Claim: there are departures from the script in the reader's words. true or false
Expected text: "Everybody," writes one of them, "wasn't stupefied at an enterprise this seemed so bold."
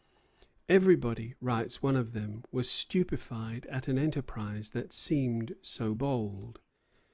true